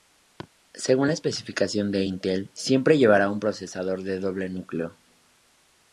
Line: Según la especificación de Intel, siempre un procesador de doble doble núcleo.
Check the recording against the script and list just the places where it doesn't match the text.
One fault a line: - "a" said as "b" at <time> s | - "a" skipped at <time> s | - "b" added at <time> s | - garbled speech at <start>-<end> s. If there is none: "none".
- "llevará" added at 3.0 s
- "doble" skipped at 4.5 s